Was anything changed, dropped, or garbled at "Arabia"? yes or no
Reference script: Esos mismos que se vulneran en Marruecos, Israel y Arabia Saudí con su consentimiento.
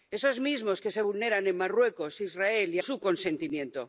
yes